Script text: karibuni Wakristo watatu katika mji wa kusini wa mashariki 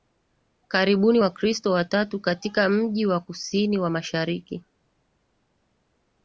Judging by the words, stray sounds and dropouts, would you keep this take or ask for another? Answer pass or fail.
pass